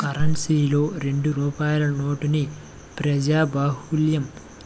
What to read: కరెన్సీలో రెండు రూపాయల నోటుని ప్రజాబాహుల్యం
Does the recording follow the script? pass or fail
pass